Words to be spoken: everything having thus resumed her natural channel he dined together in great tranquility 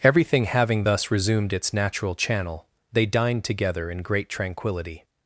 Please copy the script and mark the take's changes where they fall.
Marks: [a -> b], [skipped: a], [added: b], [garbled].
everything having thus resumed [her -> its] natural channel [he -> they] dined together in great tranquility